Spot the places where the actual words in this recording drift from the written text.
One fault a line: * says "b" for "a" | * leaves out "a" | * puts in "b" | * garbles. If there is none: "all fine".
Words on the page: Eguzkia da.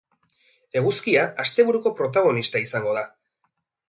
* puts in "asteburuko protagonista izango"